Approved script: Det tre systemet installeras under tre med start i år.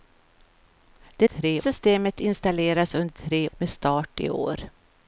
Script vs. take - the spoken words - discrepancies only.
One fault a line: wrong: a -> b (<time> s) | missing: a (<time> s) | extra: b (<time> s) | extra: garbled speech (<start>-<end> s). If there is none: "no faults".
no faults